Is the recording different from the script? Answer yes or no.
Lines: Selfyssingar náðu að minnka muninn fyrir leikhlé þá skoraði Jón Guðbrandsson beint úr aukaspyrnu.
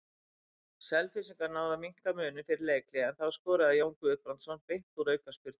yes